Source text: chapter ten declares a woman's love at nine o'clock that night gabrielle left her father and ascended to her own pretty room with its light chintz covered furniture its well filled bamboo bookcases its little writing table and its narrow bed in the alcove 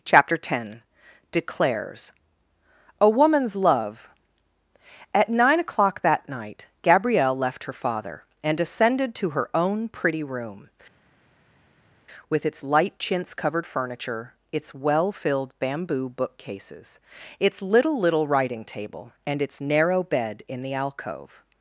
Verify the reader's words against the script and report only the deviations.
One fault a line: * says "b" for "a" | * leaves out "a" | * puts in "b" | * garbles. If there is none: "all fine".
* puts in "little"